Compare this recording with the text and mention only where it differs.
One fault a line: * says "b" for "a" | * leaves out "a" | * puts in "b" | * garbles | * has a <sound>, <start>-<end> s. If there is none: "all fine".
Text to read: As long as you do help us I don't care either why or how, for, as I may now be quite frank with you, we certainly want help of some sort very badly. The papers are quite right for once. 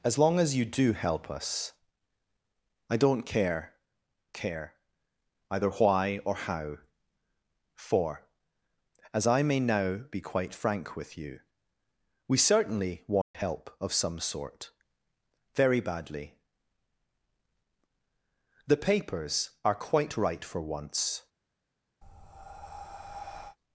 * puts in "care"
* has a dropout, 13.2-13.3 s
* has a breath, 22.0-23.6 s